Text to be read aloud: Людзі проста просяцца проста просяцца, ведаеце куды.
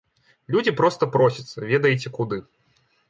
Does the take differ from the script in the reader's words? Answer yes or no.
yes